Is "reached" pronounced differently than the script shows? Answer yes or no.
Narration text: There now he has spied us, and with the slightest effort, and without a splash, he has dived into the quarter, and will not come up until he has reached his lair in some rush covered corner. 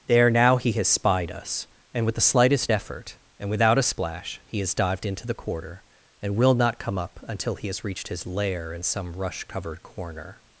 no